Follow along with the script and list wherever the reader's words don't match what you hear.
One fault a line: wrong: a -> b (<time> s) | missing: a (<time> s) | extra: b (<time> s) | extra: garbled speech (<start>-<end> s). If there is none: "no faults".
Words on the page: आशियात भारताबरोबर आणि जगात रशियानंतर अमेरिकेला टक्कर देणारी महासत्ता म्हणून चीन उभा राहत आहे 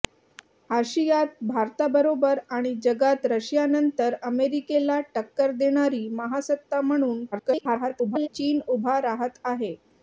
extra: garbled speech (7.3-8.3 s)